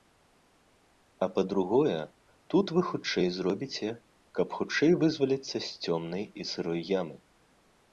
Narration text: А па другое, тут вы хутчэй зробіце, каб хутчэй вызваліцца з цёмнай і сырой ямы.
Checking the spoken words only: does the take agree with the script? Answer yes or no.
yes